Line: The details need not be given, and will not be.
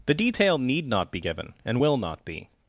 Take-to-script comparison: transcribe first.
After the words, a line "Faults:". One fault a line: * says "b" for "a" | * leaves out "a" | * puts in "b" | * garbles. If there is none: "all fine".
The detail need not be given, and will not be.
Faults:
* says "detail" for "details"